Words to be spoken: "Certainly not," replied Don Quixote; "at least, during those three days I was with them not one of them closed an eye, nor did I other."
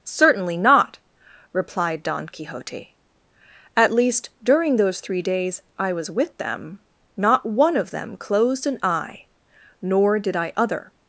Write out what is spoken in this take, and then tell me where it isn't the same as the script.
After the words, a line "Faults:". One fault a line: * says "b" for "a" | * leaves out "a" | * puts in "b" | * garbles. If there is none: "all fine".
"Certainly not," replied Don Quixote; "at least, during those three days I was with them not one of them closed an eye, nor did I other."
Faults:
all fine